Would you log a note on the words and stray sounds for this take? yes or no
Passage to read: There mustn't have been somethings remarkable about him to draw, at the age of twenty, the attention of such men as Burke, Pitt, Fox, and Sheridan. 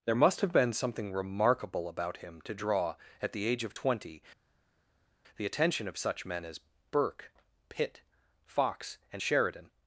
yes